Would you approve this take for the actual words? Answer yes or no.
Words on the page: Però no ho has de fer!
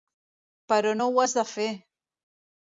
yes